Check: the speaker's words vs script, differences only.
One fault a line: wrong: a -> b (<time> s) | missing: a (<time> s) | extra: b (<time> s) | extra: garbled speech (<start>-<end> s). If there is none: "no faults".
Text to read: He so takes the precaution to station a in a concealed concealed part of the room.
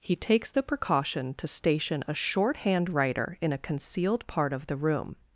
missing: so (0.1 s)
extra: shorthand writer (2.1 s)
missing: concealed (4.2 s)